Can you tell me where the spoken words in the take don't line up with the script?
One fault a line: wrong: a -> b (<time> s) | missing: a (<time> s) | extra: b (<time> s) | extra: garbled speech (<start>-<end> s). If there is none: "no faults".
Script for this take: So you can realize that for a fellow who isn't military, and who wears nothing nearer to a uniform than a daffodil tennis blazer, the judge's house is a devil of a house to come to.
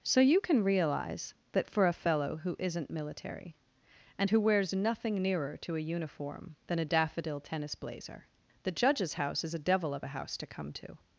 no faults